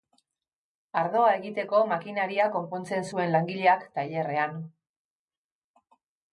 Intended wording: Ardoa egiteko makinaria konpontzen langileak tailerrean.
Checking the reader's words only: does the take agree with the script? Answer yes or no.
no